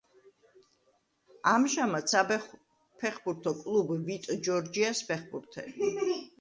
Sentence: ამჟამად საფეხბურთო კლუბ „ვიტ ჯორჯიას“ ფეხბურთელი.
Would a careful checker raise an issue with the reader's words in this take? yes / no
no